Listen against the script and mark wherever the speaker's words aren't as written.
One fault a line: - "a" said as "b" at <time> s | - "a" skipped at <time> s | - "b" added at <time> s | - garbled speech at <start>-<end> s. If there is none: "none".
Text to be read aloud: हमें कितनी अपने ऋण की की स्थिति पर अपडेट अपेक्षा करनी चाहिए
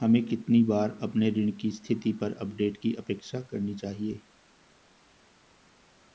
- "बार" added at 0.6 s
- "की" skipped at 1.7 s
- "की" added at 2.8 s